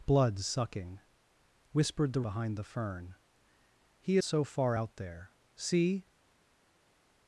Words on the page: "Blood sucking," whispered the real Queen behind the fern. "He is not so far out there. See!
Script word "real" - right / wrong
wrong